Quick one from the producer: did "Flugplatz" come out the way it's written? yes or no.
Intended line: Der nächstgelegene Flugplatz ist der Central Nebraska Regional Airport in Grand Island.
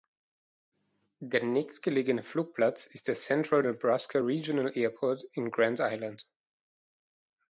yes